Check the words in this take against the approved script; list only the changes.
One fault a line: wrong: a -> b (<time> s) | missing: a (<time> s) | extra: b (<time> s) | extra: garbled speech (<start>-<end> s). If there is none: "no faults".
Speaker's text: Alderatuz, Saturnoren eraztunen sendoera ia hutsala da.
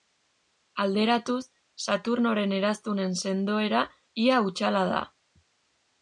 no faults